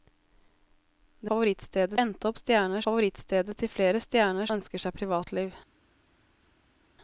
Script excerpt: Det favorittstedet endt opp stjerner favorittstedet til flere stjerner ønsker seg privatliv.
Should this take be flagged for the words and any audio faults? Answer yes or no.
no